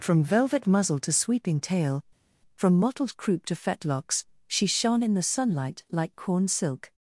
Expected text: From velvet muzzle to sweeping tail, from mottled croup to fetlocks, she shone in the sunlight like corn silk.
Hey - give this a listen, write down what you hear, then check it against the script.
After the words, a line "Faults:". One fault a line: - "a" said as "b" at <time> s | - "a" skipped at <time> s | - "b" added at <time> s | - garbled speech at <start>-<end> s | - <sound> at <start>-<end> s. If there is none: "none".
From velvet muzzle to sweeping tail, from mottled croup to fetlocks, she shone in the sunlight like corn silk.
Faults:
none